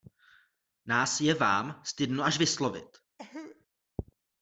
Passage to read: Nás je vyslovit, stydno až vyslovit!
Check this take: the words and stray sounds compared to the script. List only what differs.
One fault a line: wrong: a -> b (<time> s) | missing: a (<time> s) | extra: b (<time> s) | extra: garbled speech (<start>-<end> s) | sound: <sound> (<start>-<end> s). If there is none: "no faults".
wrong: vyslovit -> vám (1.3 s)
sound: cough (3.2-3.7 s)